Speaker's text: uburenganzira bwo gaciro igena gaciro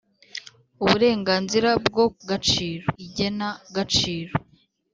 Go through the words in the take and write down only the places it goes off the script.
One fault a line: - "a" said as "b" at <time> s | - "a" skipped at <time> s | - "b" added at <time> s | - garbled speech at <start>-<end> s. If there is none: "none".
none